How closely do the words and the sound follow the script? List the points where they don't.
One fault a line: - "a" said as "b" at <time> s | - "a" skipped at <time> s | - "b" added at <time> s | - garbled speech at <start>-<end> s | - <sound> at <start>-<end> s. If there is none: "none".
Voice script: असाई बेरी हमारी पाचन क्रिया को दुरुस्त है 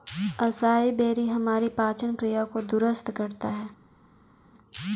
- "करता" added at 3.1 s